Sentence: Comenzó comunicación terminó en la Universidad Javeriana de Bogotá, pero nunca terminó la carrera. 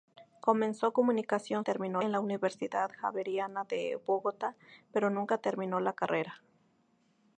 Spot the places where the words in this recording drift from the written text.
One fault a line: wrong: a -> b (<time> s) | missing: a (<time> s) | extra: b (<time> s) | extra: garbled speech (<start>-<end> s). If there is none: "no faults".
no faults